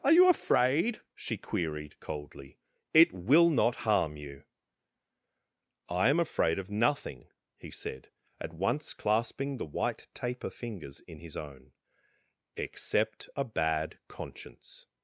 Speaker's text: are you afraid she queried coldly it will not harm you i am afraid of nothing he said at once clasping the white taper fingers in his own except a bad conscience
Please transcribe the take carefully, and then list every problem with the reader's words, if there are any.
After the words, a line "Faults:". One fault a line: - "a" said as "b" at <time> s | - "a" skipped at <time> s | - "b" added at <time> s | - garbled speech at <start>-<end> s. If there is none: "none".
are you afraid she queried coldly it will not harm you i am afraid of nothing he said at once clasping the white taper fingers in his own except a bad conscience
Faults:
none